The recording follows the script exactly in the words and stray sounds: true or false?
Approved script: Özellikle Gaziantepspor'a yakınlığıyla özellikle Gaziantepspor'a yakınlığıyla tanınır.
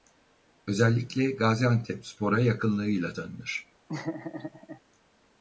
false